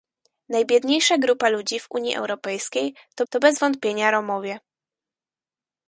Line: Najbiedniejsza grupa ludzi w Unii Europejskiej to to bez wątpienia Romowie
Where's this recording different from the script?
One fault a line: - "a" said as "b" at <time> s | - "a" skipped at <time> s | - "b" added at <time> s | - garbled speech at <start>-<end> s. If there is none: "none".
none